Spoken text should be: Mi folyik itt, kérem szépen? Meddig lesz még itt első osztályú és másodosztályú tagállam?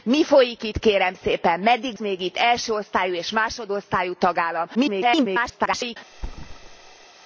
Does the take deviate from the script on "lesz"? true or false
true